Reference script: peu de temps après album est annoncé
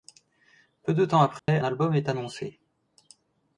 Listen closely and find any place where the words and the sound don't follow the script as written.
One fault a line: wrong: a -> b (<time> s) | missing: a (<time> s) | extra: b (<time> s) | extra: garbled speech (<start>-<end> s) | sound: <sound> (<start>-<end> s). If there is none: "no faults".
sound: dropout (1.4-1.5 s)